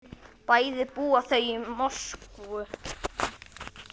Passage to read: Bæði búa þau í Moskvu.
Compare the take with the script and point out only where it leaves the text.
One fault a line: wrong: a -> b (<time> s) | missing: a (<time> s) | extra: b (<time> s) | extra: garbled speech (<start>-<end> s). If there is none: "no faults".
no faults